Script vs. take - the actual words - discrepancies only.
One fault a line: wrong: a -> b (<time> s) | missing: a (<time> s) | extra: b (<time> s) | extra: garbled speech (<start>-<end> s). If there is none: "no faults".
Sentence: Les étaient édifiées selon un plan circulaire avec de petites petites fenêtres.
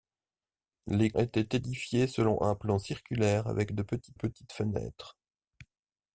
no faults